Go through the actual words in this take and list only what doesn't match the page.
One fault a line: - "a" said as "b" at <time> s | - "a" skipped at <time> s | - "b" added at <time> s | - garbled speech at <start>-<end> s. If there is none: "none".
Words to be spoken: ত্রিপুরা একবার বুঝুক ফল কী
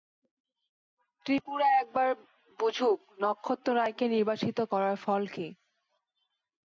- "নক্ষত্ররায়কে নির্বাসিত করার" added at 3.2 s